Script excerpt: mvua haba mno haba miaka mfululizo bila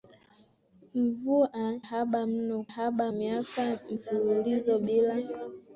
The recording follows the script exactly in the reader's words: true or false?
true